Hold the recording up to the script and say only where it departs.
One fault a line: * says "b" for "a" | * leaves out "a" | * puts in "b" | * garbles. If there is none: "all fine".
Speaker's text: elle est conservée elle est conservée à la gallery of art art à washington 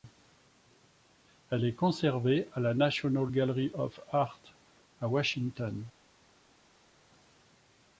* leaves out "elle est conservée"
* puts in "national"
* leaves out "art"